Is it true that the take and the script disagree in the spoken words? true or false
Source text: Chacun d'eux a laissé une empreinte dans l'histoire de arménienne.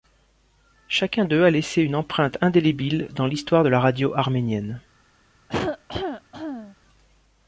true